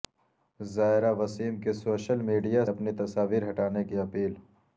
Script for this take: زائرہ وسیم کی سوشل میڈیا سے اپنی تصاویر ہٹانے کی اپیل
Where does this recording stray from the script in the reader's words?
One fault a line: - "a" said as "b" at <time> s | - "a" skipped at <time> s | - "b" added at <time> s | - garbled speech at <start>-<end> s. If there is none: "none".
- "سے" skipped at 2.6 s